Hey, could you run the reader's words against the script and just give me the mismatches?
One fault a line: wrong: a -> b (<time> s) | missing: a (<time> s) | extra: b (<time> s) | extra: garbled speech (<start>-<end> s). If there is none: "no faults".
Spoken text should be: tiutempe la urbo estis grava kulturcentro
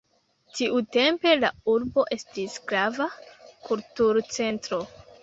no faults